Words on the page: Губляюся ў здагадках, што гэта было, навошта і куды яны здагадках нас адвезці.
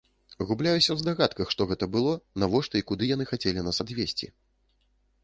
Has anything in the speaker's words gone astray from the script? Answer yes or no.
yes